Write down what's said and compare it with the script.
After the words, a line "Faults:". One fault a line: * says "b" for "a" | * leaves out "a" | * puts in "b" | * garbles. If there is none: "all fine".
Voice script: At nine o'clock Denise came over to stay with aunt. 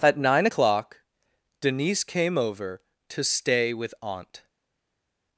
At nine o'clock Denise came over to stay with aunt.
Faults:
all fine